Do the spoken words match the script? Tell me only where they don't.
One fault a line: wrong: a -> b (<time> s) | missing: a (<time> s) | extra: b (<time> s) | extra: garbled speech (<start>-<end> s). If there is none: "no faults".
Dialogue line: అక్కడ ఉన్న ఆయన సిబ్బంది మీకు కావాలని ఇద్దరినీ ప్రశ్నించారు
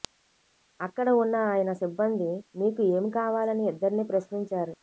extra: ఏమి (2.9 s)